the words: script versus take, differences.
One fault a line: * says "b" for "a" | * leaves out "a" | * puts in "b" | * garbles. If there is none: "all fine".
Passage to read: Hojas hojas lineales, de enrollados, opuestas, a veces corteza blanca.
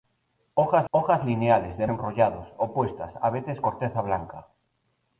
all fine